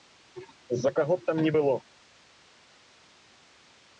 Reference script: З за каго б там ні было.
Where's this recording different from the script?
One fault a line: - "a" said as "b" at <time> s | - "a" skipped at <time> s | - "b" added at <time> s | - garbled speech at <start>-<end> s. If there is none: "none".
none